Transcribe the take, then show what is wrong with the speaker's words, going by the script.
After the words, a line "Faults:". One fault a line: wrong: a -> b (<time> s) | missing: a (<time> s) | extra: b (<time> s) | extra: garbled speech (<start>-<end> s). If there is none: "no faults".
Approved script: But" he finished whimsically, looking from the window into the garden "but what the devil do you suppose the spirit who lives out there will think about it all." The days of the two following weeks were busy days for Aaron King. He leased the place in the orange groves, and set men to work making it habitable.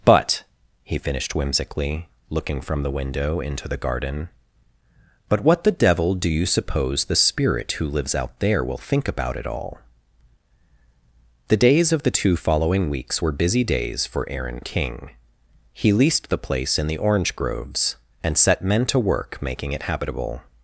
But" he finished whimsically, looking from the window into the garden "but what the devil do you suppose the spirit who lives out there will think about it all." The days of the two following weeks were busy days for Aaron King. He leased the place in the orange groves, and set men to work making it habitable.
Faults:
no faults